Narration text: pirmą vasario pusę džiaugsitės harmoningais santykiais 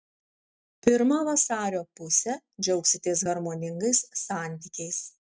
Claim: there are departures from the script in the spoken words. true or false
false